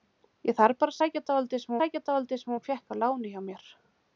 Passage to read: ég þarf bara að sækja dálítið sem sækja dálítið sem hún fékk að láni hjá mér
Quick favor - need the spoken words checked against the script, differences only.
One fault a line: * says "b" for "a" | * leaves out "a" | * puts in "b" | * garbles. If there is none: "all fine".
all fine